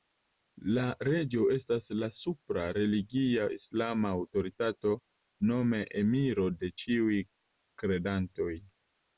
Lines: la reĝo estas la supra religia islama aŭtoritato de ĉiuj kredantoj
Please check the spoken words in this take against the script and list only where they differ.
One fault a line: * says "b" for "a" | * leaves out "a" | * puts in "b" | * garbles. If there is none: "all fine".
* puts in "nome emiro"